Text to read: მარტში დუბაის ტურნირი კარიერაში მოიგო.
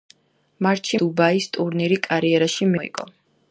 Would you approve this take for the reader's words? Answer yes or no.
yes